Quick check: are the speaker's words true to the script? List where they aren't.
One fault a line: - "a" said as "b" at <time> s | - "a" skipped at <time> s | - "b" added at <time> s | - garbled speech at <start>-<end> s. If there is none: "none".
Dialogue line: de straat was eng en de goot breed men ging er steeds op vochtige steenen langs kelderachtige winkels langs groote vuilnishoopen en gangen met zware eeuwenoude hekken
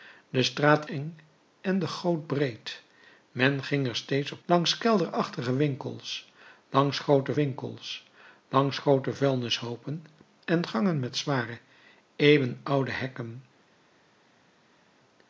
- "was" skipped at 0.8 s
- "vochtige steenen" said as "langs kelderachtige winkels" at 4.5 s
- "kelderachtige" said as "groote" at 7.0 s